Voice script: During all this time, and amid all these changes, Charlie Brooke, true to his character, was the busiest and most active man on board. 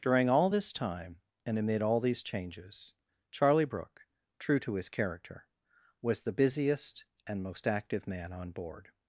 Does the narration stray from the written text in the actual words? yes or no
no